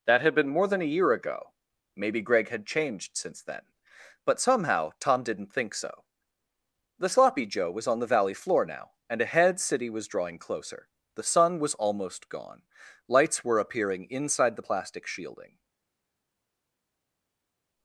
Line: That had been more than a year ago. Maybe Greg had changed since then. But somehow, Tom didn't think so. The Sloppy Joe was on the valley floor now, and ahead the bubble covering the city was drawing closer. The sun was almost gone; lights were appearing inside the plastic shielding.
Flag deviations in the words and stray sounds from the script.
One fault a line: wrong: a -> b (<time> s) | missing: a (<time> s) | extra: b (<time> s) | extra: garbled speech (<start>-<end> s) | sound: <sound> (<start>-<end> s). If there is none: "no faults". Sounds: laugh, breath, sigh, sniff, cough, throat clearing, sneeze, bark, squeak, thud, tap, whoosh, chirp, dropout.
missing: the bubble covering the (9.6 s)